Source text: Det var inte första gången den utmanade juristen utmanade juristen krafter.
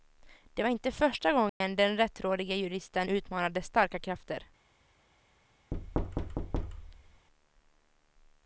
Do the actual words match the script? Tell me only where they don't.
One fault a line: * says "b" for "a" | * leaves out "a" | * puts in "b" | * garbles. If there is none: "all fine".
* says "rättrådige" for "utmanade"
* says "starka" for "juristen"